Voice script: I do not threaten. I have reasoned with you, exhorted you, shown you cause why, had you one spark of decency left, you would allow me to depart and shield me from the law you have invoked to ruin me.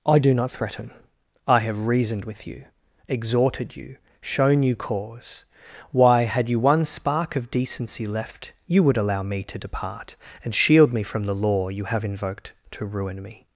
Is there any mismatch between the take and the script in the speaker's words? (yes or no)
no